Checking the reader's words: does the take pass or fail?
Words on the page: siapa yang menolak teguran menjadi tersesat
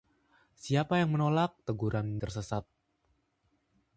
fail